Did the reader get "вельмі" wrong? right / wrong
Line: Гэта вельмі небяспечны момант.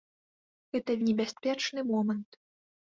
wrong